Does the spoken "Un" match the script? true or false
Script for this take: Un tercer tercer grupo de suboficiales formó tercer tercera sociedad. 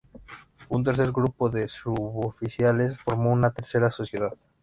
true